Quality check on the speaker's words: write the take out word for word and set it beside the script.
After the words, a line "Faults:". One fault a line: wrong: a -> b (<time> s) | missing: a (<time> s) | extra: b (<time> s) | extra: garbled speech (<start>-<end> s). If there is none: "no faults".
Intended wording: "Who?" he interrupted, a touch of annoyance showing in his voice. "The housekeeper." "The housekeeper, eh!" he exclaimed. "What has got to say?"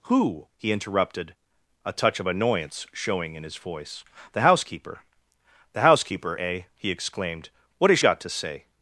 "Who?" he interrupted, a touch of annoyance showing in his voice. "The housekeeper." "The housekeeper, eh!" he exclaimed. "What has got to say?"
Faults:
no faults